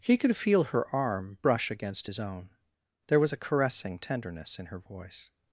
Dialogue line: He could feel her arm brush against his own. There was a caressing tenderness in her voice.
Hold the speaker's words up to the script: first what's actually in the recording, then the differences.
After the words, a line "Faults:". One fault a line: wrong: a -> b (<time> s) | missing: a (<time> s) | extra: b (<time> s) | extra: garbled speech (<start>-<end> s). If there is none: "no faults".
He could feel her arm brush against his own. There was a caressing tenderness in her voice.
Faults:
no faults